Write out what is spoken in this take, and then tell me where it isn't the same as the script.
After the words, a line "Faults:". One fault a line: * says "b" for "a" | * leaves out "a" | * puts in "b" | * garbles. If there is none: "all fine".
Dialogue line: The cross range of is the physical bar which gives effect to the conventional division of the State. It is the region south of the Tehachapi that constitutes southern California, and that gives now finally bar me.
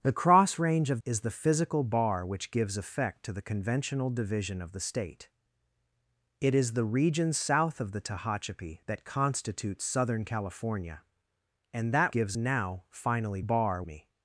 The cross range of is the physical bar which gives effect to the conventional division of the State. It is the region south of the Tehachapi that constitutes southern California, and that gives now finally bar me.
Faults:
all fine